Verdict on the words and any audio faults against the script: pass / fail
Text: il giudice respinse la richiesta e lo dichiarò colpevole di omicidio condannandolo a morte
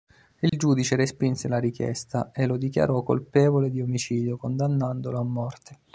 fail